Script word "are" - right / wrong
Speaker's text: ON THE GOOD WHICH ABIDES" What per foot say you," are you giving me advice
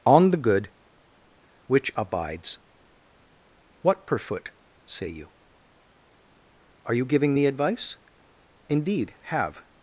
right